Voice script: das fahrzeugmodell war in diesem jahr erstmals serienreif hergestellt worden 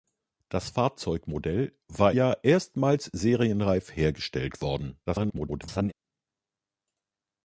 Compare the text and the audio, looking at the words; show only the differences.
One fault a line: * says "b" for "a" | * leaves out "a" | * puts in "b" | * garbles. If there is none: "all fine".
* leaves out "in diesem"
* garbles